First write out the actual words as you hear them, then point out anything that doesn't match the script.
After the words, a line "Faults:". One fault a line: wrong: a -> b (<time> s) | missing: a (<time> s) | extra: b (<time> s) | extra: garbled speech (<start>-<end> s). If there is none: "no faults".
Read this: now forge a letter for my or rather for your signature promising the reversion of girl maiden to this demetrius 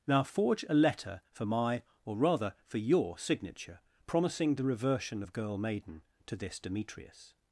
now forge a letter for my or rather for your signature promising the reversion of girl maiden to this demetrius
Faults:
no faults